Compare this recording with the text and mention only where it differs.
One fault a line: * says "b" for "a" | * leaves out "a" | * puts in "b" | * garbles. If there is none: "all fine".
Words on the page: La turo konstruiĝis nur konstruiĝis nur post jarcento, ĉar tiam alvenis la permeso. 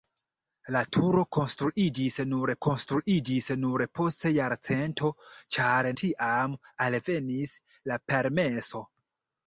all fine